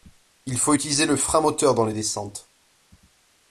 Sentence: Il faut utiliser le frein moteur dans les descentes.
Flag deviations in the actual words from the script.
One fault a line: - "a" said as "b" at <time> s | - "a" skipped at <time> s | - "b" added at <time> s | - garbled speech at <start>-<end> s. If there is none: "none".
none